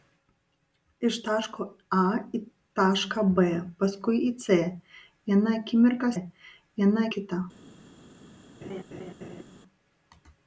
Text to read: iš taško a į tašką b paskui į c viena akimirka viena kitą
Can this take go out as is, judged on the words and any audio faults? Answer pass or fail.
fail